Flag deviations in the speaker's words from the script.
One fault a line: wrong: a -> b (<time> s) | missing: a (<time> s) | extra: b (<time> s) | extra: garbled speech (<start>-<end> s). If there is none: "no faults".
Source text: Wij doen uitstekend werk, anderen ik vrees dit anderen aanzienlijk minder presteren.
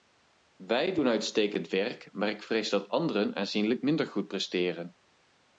wrong: anderen -> maar (2.1 s)
wrong: dit -> dat (2.7 s)
extra: goed (4.1 s)